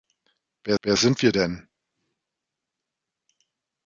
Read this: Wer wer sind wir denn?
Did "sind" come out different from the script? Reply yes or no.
no